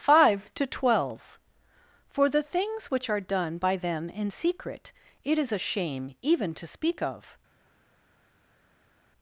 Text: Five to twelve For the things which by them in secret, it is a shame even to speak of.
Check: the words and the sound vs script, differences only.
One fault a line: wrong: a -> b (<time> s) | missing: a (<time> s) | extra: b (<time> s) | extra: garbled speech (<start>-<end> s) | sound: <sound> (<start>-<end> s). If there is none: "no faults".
extra: are done (3.1 s)